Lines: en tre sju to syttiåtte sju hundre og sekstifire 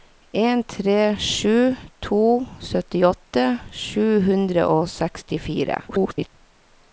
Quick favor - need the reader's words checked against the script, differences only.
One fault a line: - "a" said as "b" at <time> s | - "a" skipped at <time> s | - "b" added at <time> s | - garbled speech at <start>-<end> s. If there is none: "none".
- garbled speech at 5.9-6.3 s